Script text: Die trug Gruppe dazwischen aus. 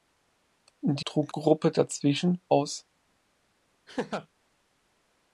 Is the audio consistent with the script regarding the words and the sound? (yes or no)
no